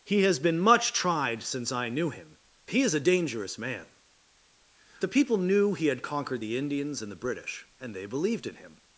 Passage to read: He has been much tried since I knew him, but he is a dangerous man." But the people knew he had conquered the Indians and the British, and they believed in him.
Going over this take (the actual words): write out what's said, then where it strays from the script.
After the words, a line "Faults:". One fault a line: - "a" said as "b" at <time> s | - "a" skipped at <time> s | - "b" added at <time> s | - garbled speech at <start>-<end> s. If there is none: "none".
He has been much tried since I knew him, he is a dangerous man." The people knew he had conquered the Indians and the British, and they believed in him.
Faults:
- "but" skipped at 2.4 s
- "But" skipped at 3.9 s